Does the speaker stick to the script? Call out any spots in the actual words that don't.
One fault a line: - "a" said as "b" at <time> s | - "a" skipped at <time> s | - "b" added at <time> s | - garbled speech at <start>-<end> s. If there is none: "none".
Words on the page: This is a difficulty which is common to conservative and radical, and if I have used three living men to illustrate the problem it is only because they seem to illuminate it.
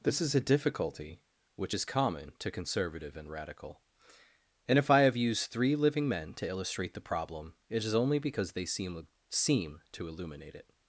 - "seem" added at 9.3 s